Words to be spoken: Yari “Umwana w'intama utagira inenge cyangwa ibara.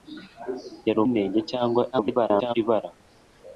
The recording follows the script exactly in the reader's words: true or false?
false